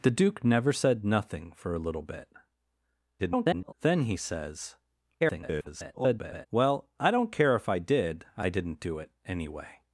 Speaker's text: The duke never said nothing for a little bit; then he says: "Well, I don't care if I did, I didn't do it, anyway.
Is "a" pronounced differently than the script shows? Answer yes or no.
no